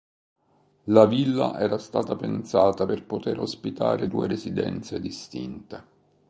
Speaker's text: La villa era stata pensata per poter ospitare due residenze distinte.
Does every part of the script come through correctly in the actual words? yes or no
yes